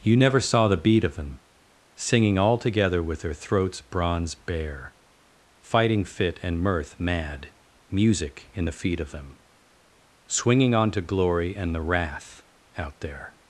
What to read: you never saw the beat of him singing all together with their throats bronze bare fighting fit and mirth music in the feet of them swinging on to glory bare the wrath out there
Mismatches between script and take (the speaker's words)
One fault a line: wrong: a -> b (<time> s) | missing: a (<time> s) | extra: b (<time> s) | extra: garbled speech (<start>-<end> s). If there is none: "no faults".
wrong: him -> them (1.1 s)
extra: mad (7.0 s)
wrong: bare -> and (11.6 s)